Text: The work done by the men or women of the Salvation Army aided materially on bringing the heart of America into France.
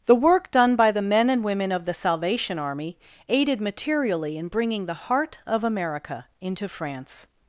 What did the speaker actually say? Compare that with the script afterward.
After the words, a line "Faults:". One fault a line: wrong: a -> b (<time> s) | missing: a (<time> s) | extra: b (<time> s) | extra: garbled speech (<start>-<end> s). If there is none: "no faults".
The work done by the men and women of the Salvation Army aided materially in bringing the heart of America into France.
Faults:
wrong: or -> and (1.3 s)
wrong: on -> in (4.4 s)